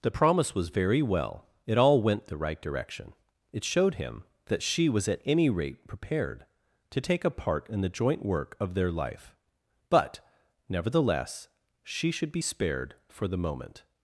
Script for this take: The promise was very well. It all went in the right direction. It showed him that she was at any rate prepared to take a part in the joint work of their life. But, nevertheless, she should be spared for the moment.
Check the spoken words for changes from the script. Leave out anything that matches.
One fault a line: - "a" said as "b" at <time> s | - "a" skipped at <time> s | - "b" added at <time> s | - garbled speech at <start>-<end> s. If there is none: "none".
- "in" skipped at 2.3 s